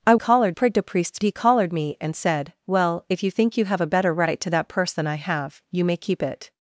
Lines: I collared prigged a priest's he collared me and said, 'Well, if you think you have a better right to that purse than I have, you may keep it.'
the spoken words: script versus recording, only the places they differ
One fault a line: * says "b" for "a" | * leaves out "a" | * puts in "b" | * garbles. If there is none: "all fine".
all fine